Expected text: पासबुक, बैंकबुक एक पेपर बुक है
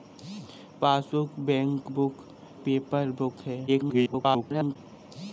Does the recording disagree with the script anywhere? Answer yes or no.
yes